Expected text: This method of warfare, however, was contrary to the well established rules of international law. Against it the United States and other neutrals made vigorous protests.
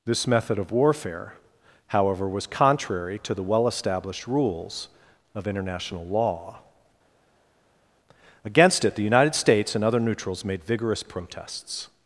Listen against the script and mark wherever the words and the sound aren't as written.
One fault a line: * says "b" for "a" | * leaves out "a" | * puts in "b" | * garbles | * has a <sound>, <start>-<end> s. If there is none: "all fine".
all fine